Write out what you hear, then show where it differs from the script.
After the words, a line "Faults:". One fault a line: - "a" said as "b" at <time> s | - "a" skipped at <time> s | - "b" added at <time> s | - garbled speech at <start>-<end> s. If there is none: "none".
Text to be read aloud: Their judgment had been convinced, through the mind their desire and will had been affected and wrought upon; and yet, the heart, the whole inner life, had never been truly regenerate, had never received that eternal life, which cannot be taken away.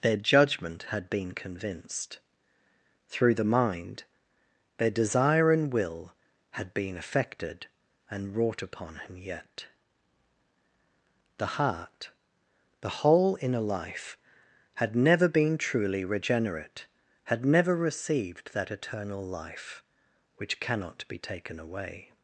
Their judgment had been convinced, through the mind their desire and will had been affected and wrought upon; him yet, the heart, the whole inner life, had never been truly regenerate, had never received that eternal life, which cannot be taken away.
Faults:
- "and" said as "him" at 8.9 s